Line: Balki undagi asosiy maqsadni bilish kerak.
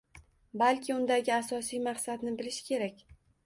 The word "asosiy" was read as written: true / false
true